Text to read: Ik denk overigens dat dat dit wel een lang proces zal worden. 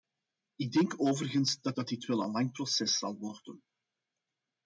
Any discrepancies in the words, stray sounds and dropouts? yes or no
no